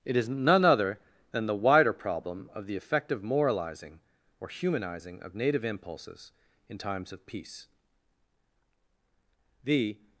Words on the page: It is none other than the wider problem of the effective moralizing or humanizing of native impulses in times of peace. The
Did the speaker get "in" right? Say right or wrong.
right